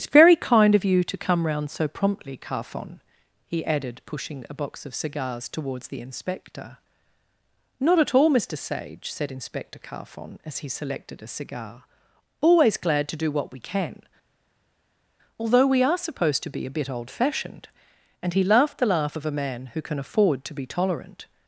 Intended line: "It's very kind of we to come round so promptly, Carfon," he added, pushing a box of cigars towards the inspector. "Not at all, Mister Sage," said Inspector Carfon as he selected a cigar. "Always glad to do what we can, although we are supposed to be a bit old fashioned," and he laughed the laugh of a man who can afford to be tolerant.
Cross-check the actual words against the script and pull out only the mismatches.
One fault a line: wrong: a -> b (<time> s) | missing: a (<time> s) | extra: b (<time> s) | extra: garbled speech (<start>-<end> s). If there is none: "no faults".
wrong: we -> you (0.8 s)